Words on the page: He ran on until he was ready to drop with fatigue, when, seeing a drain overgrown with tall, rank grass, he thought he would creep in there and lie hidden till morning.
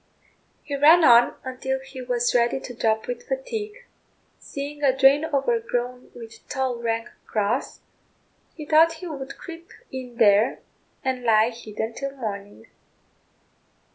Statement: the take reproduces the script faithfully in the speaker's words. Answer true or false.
false